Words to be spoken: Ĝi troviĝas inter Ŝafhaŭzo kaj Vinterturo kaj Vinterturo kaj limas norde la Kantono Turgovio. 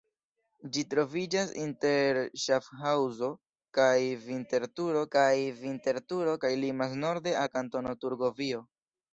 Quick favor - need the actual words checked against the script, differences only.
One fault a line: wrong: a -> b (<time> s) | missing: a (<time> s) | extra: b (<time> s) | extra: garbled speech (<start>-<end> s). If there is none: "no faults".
no faults